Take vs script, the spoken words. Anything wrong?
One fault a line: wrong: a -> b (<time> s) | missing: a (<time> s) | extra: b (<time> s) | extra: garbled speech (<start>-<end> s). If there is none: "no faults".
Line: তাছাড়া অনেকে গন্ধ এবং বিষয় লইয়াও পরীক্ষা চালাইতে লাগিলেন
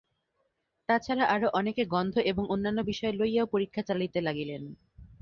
extra: আরও (1.2 s)
extra: অন্যান্য (2.5 s)